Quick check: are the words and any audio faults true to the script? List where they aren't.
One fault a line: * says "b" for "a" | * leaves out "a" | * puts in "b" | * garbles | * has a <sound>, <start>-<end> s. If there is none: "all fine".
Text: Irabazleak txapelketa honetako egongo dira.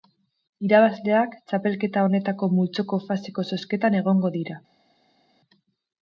* puts in "multzoko faseko zozketan"